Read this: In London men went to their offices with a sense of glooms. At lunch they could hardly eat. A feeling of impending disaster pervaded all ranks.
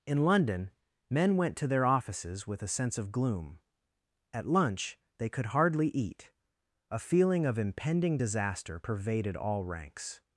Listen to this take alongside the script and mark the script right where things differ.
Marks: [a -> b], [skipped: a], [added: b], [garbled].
In London men went to their offices with a sense of [glooms. -> gloom] At lunch they could hardly eat. A feeling of impending disaster pervaded all ranks.